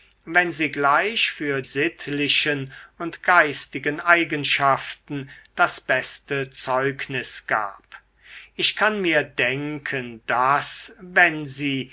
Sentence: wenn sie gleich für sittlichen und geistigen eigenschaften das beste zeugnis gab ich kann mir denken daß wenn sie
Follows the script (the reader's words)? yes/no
yes